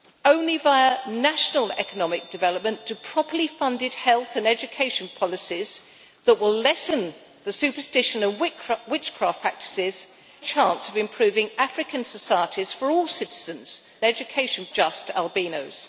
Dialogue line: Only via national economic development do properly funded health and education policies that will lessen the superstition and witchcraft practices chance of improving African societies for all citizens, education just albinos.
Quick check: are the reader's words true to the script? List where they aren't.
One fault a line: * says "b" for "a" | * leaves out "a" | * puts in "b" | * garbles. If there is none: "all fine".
all fine